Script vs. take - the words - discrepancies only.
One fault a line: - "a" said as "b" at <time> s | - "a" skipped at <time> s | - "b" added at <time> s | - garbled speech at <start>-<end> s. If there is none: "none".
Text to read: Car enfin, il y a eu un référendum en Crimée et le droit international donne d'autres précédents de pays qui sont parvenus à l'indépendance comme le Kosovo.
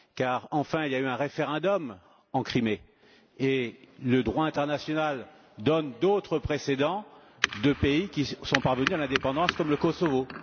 none